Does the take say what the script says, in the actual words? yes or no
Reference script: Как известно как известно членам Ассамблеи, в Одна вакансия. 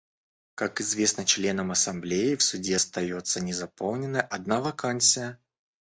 no